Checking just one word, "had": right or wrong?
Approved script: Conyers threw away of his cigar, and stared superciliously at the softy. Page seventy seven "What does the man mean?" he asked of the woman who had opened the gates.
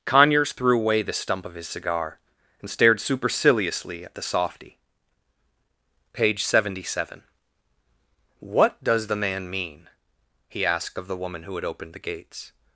right